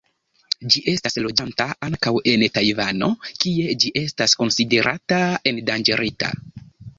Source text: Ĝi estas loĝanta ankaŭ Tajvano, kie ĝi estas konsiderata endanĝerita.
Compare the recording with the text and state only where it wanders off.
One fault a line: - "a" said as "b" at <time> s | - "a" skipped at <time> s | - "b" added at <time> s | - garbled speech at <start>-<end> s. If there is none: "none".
- "en" added at 2.3 s